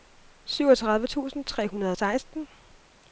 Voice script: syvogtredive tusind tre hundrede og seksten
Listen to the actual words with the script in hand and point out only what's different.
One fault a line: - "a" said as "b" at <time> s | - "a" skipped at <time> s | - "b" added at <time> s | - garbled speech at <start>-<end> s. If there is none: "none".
none